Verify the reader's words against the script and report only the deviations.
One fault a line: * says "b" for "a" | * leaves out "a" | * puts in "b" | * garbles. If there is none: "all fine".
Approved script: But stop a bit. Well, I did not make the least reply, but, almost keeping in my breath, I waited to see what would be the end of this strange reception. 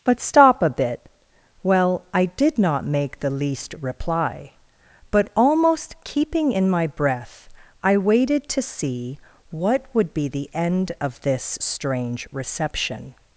all fine